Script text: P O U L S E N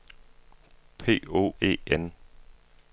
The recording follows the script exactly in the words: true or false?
false